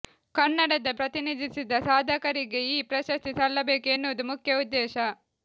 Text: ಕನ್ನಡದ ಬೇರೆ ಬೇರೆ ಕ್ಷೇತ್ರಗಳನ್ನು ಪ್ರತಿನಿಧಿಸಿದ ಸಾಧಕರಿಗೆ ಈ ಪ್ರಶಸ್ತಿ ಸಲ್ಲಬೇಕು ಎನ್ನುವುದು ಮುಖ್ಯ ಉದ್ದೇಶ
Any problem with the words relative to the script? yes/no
yes